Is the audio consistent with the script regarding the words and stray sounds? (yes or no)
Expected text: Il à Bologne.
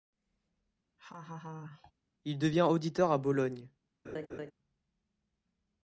no